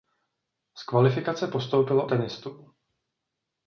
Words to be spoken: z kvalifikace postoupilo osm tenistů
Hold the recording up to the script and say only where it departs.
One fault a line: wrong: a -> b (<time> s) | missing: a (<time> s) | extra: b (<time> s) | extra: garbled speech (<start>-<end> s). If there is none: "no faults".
missing: osm (2.1 s)